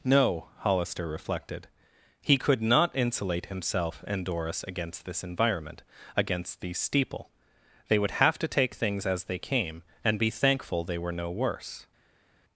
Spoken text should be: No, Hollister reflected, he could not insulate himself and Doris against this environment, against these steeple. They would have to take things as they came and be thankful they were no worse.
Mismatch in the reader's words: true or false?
false